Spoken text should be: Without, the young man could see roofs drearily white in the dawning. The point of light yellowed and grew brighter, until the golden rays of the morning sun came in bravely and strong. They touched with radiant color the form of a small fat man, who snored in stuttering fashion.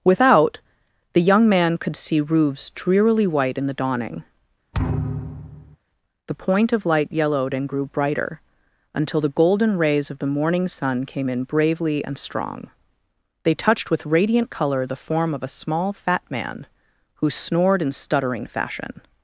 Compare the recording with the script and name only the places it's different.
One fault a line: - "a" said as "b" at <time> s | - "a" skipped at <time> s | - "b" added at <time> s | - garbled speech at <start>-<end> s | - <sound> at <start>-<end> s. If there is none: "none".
- thud at 4.7-5.8 s